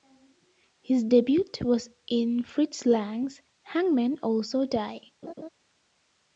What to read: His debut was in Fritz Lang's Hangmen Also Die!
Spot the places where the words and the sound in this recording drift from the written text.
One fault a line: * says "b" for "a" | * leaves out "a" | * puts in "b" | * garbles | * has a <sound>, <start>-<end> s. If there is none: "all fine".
* has a laugh, 5.2-5.5 s